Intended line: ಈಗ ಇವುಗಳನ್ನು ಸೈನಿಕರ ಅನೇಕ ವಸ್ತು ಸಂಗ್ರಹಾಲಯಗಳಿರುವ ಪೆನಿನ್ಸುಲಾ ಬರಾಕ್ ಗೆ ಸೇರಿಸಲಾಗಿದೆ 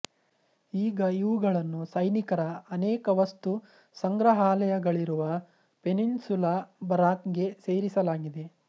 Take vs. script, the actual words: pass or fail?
pass